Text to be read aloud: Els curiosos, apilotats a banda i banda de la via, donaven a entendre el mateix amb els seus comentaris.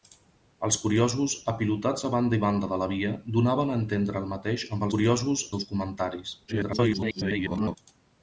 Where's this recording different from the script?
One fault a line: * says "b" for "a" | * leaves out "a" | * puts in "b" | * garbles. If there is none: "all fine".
* says "curiosos" for "els"
* garbles